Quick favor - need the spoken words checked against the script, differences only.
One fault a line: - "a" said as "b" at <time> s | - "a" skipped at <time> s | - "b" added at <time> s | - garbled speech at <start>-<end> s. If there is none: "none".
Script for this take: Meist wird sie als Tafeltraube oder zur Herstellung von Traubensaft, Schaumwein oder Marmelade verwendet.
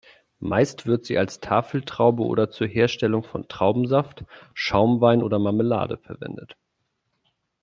none